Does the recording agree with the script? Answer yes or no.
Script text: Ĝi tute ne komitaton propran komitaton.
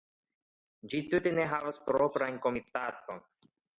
no